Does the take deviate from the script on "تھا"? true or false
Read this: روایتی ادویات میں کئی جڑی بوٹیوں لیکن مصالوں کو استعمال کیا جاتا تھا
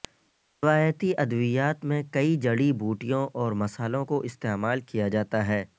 true